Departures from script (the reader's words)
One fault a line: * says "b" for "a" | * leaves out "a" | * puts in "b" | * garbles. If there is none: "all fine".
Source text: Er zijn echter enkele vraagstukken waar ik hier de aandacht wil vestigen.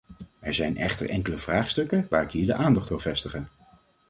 all fine